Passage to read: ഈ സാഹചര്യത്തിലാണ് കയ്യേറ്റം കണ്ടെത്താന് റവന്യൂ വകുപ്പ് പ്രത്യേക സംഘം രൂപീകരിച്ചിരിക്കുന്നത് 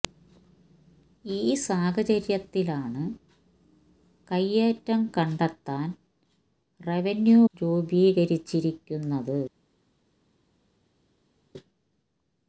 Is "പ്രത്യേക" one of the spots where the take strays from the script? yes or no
yes